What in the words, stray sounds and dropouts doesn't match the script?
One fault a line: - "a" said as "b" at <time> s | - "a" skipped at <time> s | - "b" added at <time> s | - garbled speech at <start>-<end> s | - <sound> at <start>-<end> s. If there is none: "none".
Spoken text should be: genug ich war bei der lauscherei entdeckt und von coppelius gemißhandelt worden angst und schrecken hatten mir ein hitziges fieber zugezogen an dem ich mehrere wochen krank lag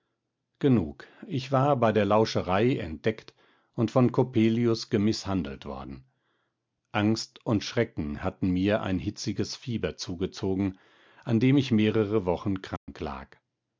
- dropout at 12.8-12.9 s